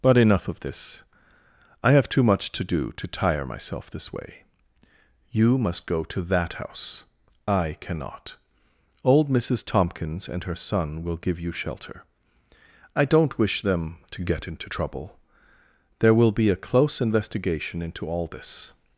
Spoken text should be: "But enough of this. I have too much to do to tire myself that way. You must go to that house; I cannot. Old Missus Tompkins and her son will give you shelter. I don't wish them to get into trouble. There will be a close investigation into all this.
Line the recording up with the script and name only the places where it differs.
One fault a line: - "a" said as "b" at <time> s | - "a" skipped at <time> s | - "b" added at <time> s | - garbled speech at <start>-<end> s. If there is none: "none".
- "that" said as "this" at 3.9 s